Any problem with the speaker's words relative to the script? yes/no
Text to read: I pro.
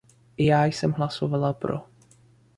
yes